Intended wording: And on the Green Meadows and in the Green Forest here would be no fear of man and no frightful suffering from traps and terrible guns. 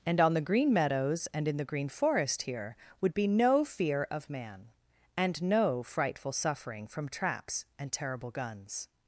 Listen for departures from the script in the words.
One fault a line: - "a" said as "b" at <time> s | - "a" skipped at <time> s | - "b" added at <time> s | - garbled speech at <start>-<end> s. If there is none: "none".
none